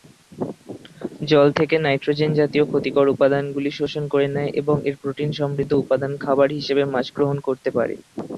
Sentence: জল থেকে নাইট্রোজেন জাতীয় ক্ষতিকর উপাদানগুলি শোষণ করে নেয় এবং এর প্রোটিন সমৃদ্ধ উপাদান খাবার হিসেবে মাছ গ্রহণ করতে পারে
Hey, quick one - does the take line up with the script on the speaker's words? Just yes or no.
yes